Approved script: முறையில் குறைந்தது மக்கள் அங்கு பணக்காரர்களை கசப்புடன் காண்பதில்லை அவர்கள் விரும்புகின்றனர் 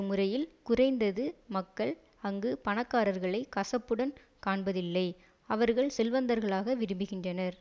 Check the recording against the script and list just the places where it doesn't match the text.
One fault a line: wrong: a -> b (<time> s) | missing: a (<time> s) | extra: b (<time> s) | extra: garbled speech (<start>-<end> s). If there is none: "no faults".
extra: செல்வந்தர்களாக (6.0 s)